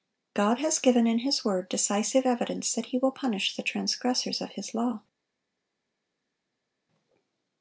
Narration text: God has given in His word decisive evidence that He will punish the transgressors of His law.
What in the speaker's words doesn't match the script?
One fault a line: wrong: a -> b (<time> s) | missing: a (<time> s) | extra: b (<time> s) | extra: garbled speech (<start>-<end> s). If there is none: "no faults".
no faults